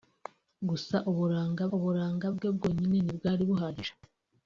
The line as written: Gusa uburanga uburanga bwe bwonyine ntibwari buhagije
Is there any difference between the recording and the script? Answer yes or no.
no